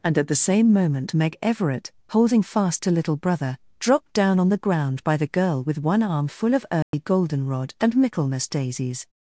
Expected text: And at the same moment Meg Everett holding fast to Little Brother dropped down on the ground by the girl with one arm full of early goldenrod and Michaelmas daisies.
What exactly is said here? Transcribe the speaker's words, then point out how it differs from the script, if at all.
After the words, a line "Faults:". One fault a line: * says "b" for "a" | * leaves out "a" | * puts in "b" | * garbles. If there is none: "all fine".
And at the same moment Meg Everett holding fast to Little Brother dropped down on the ground by the girl with one arm full of early goldenrod and Michaelmas daisies.
Faults:
all fine